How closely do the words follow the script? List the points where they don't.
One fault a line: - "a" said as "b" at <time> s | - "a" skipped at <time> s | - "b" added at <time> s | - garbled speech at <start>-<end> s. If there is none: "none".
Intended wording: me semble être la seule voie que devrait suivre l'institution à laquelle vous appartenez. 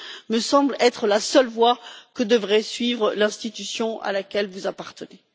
none